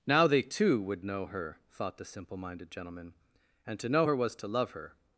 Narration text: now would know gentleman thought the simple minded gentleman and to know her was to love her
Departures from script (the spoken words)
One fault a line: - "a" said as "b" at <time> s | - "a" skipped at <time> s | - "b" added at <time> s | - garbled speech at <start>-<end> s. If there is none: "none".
- "they too" added at 0.3 s
- "gentleman" said as "her" at 1.3 s